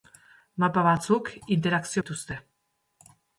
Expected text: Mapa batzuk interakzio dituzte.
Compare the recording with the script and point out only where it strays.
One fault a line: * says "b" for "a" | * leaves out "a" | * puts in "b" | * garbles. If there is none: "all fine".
all fine